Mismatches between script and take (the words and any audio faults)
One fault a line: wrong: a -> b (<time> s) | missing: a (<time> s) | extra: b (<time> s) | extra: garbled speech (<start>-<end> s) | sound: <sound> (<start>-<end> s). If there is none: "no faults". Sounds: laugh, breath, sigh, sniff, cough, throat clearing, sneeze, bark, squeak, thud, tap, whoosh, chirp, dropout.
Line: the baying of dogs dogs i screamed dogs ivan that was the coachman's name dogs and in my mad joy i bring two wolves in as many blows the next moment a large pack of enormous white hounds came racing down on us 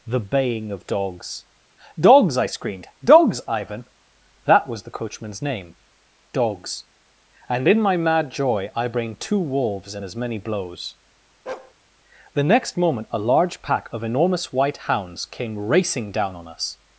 sound: bark (11.5-11.7 s)